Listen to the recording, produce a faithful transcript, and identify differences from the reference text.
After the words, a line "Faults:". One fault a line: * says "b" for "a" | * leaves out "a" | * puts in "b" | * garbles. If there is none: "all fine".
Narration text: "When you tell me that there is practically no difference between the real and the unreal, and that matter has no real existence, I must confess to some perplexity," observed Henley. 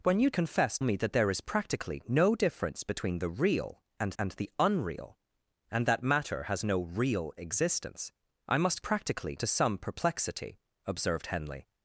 "When you confess me that there is practically no difference between the real and and the unreal, and that matter has no real existence, I must practically to some perplexity," observed Henley.
Faults:
* says "confess" for "tell"
* puts in "and"
* says "practically" for "confess"